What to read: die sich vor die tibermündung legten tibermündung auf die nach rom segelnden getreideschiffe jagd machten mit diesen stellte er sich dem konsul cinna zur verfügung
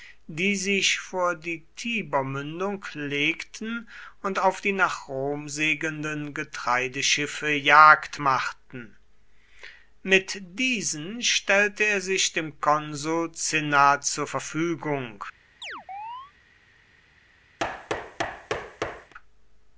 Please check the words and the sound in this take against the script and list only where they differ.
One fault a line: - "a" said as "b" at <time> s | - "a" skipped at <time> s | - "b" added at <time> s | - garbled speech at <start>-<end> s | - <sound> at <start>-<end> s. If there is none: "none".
- "tibermündung" said as "und" at 4.2 s
- chirp at 15.6-16.3 s
- thud at 17.6-19.1 s